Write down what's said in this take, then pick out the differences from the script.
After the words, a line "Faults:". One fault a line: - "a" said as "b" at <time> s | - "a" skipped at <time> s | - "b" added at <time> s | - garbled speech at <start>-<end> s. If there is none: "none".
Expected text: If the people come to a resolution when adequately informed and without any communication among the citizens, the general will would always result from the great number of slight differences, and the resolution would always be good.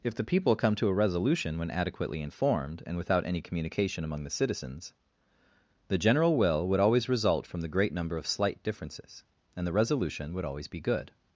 If the people come to a resolution when adequately informed and without any communication among the citizens, the general will would always result from the great number of slight differences, and the resolution would always be good.
Faults:
none